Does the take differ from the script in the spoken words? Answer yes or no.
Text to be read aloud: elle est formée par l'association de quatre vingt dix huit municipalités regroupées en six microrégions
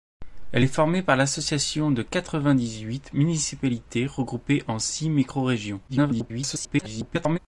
yes